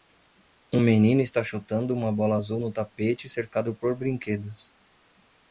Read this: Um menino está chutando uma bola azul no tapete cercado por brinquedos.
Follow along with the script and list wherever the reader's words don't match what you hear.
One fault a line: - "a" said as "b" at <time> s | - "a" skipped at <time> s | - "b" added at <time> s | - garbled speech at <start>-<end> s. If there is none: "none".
none